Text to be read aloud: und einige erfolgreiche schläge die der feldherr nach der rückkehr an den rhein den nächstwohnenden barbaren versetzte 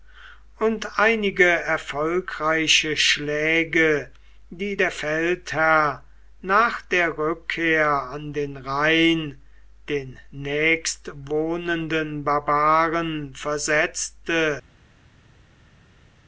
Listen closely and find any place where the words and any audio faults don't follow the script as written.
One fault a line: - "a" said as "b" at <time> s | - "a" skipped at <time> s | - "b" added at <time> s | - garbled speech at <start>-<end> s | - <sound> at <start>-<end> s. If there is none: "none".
none